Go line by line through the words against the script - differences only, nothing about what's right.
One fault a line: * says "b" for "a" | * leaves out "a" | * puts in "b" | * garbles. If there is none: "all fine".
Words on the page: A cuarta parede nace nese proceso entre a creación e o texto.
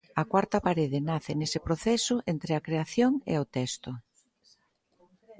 all fine